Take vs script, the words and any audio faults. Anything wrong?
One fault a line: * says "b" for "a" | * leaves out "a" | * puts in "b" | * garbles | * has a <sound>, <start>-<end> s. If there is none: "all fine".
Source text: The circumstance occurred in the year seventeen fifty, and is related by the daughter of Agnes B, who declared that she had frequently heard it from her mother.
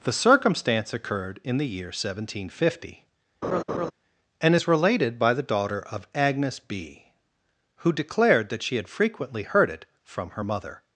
* has a laugh, 3.4-3.9 s